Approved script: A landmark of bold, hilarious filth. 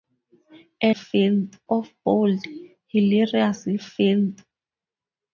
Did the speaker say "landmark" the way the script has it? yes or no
no